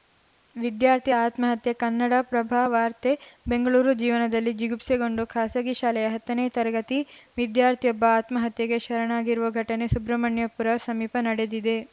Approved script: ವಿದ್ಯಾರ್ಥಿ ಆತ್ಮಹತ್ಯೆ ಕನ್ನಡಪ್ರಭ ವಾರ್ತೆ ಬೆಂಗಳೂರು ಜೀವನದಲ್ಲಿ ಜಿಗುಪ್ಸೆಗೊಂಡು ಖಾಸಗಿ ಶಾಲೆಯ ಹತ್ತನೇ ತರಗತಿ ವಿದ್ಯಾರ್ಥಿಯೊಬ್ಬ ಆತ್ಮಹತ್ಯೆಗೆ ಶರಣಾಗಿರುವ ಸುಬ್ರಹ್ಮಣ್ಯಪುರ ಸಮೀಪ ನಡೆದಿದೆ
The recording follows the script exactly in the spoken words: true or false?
false